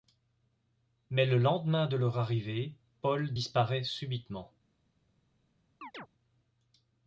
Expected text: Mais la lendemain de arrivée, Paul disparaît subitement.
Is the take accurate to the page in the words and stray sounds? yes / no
no